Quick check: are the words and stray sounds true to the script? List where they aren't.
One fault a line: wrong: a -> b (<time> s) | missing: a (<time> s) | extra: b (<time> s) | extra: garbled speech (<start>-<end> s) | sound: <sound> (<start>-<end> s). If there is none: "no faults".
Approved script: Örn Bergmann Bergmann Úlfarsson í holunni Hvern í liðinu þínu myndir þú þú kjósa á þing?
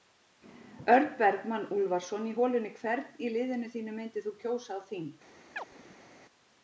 missing: Bergmann (1.7 s)
missing: þú (4.4 s)
sound: chirp (5.6-6.1 s)